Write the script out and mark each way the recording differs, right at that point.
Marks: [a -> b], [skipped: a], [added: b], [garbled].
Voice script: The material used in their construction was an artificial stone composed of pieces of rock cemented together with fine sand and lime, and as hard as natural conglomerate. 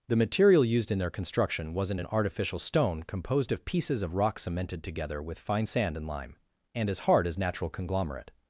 The material used in their construction [was -> wasn't] an artificial stone composed of pieces of rock cemented together with fine sand and lime, and as hard as natural conglomerate.